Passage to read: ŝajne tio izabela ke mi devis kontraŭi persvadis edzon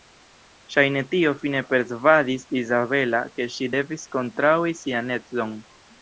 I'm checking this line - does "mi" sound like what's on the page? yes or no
no